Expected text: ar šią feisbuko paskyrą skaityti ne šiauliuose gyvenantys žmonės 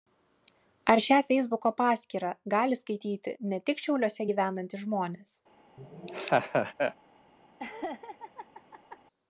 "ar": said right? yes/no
yes